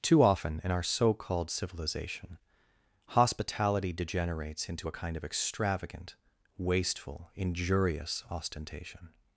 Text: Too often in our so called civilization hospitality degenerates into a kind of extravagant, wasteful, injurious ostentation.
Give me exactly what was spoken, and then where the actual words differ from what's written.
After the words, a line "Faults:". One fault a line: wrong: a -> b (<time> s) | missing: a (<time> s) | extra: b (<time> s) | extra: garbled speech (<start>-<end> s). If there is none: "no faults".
Too often in our so called civilization hospitality degenerates into a kind of extravagant, wasteful, injurious ostentation.
Faults:
no faults